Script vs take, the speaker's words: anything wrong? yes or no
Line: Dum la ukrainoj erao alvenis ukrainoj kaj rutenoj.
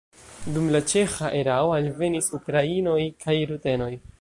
yes